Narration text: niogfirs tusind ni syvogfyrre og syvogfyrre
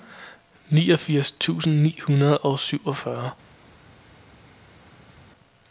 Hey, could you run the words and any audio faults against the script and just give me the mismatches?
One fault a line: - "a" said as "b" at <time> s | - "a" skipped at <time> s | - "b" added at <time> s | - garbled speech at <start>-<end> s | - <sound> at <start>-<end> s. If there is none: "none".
- "syvogfyrre" said as "hundrede" at 2.0 s